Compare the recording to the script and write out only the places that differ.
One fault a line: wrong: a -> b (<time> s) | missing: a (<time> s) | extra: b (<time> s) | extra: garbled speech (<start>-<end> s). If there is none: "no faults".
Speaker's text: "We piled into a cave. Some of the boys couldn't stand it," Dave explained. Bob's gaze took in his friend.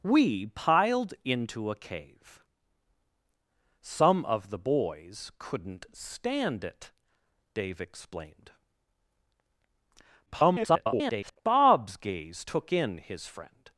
extra: garbled speech (10.3-11.4 s)